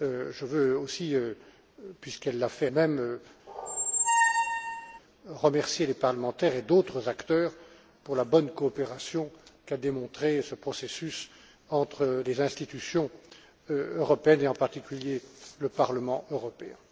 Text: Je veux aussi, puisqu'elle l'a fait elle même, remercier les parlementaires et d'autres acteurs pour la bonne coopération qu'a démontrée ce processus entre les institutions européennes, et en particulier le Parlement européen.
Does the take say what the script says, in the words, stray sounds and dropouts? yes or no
no